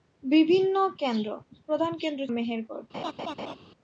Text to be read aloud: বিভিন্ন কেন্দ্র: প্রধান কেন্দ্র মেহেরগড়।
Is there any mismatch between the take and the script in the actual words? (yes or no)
no